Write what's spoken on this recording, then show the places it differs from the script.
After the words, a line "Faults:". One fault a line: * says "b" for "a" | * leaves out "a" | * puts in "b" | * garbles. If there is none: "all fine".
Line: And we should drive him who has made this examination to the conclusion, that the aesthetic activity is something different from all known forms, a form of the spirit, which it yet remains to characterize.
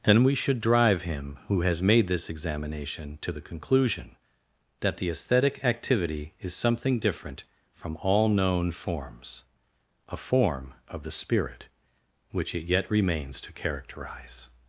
And we should drive him who has made this examination to the conclusion, that the aesthetic activity is something different from all known forms, a form of the spirit, which it yet remains to characterize.
Faults:
all fine